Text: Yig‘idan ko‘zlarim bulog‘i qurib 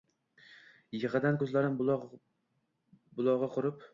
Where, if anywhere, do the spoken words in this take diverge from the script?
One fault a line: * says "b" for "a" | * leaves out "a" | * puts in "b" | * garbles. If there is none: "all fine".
all fine